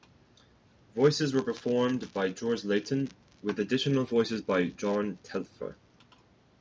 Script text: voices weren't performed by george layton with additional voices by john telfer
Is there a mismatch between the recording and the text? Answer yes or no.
yes